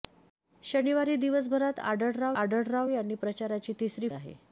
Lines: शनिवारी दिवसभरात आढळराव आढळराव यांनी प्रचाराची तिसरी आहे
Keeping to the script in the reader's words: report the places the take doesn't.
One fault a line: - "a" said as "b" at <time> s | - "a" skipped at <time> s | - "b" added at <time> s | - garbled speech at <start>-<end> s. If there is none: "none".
none